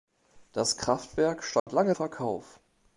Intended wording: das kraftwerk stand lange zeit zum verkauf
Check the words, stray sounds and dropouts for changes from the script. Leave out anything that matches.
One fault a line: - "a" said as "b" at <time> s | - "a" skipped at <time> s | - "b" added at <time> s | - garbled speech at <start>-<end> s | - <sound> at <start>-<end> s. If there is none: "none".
- dropout at 1.6-1.7 s
- "zeit zum" skipped at 1.9 s